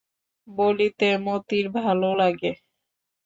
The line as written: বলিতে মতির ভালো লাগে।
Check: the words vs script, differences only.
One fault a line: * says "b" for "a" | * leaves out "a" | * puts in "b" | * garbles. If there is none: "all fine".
all fine